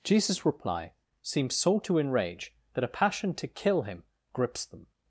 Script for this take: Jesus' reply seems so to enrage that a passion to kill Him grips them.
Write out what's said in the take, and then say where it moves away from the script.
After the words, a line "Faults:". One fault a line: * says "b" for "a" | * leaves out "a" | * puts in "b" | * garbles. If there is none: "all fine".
Jesus' reply seems so to enrage that a passion to kill Him grips them.
Faults:
all fine